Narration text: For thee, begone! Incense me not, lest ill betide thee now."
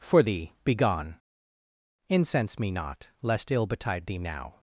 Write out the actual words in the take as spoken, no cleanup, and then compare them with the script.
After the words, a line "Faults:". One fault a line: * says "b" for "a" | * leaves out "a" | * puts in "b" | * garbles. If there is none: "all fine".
For thee, begone! Incense me not, lest ill betide thee now."
Faults:
all fine